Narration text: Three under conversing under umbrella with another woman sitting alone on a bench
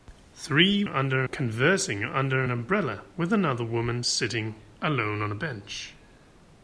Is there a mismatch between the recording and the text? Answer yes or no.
no